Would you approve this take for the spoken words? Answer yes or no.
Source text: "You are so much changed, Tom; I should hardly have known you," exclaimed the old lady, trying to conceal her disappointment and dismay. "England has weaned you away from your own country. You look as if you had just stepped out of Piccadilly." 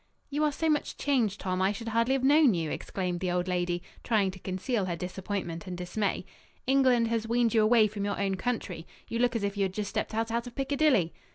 no